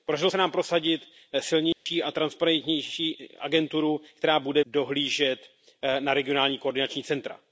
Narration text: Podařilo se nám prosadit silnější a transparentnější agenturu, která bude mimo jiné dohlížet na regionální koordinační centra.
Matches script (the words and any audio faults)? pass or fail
fail